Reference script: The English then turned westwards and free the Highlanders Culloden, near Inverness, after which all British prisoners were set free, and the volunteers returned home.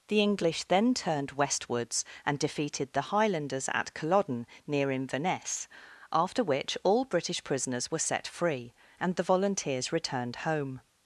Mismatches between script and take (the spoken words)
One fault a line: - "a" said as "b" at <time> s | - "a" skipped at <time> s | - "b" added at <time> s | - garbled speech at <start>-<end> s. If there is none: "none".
- "free" said as "defeated" at 2.4 s
- "at" added at 3.7 s